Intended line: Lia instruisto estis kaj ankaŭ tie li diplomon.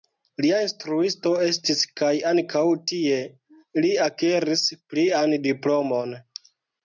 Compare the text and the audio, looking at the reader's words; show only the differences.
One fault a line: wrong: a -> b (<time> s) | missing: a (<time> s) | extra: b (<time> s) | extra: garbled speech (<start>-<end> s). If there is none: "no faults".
extra: akiris plian (4.1 s)